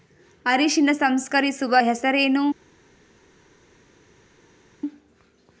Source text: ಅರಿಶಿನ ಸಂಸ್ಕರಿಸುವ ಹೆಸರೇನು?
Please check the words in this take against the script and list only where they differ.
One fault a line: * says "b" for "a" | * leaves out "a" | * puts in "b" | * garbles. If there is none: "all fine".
all fine